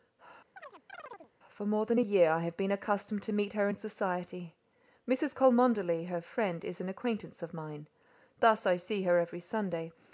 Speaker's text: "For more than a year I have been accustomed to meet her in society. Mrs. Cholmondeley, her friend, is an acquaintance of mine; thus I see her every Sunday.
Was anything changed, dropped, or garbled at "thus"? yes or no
no